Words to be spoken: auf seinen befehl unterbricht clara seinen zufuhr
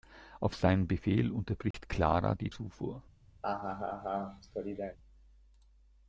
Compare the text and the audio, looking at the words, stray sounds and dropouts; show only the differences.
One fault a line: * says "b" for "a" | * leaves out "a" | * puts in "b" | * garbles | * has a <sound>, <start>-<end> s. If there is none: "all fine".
* has a dropout, 1.7-1.7 s
* says "die" for "seinen"
* has a laugh, 3.4-5.0 s